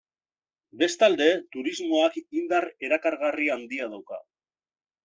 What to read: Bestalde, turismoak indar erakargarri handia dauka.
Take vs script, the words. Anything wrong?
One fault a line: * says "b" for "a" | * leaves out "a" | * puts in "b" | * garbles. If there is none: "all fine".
all fine